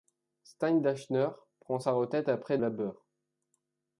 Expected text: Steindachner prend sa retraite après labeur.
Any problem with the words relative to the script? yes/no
no